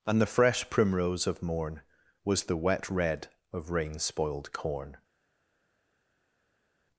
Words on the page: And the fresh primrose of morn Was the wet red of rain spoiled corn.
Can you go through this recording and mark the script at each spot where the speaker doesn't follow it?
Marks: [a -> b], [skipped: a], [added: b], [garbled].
And the fresh primrose of morn Was the wet red of rain spoiled corn.